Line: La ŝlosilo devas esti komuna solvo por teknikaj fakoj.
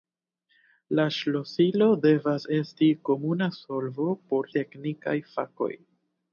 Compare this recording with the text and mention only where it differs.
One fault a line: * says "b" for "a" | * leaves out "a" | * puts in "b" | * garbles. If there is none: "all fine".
all fine